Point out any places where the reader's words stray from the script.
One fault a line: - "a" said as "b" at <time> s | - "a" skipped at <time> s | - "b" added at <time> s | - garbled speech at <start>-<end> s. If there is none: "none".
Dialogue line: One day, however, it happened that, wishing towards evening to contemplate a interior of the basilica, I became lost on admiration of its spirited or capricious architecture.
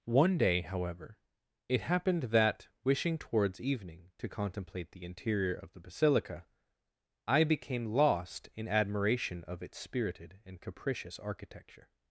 - "a" said as "the" at 4.9 s
- "on" said as "in" at 8.6 s
- "or" said as "and" at 10.4 s